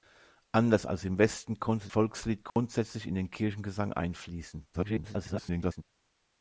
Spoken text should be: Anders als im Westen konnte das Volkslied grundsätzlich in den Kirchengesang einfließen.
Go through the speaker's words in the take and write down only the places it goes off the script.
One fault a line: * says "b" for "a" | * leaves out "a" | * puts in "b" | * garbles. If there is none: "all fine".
* leaves out "das"
* garbles